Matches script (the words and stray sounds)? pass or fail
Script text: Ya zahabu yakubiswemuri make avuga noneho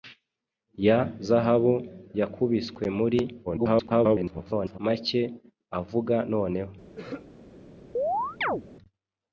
fail